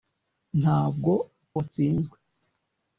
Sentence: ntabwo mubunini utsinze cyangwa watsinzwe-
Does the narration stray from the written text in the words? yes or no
yes